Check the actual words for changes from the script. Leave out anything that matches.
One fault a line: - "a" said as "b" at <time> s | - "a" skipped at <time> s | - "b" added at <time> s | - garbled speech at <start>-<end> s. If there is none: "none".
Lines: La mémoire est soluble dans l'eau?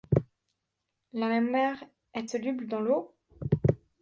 none